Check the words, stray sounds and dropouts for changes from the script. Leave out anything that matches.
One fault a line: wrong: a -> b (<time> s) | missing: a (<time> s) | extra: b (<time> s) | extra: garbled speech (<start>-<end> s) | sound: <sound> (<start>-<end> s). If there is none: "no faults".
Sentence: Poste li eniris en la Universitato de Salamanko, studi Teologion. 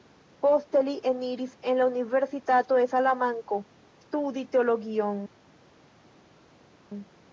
no faults